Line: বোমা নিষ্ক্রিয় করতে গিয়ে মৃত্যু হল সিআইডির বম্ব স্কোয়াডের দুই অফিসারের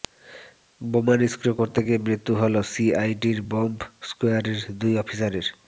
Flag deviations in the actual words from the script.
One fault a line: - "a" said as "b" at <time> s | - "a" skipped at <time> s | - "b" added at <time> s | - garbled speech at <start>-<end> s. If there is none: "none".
none